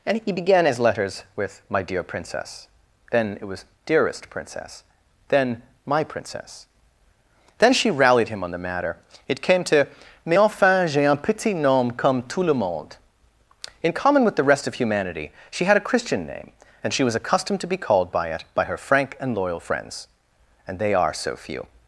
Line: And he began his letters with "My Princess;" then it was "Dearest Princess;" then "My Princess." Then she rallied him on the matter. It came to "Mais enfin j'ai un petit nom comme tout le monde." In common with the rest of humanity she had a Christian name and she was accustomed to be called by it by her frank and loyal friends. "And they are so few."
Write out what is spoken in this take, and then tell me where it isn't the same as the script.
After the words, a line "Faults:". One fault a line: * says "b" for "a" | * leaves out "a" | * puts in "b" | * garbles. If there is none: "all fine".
And he began his letters with "My dear Princess;" then it was "Dearest Princess;" then "My Princess." Then she rallied him on the matter. It came to "Mais enfin j'ai un petit nom comme tout le monde." In common with the rest of humanity she had a Christian name and she was accustomed to be called by it by her frank and loyal friends. "And they are so few."
Faults:
* puts in "dear"